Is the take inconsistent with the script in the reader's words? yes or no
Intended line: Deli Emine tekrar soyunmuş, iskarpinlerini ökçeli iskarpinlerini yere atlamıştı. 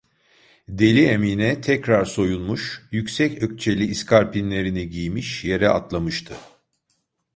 yes